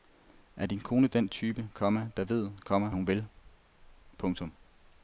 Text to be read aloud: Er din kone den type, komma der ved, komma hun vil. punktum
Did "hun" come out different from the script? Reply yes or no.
no